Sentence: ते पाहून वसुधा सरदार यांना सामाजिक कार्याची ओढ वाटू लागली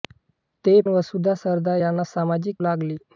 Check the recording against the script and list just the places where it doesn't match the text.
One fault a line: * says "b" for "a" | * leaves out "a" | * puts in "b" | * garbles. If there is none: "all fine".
* leaves out "पाहून"
* leaves out "कार्याची ओढ वाटू"